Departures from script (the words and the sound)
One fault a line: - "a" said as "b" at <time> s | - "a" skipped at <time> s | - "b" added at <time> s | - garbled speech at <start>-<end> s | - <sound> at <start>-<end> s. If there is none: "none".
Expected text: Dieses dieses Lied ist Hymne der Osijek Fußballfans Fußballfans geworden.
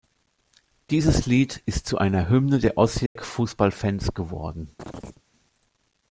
- "dieses" skipped at 1.3 s
- "zu einer" added at 1.9 s
- dropout at 3.1-3.2 s
- "Fußballfans" skipped at 4.2 s
- chirp at 4.8-5.2 s